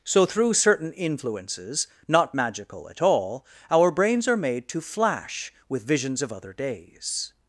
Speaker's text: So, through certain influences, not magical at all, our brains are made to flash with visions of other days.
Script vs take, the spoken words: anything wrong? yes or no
no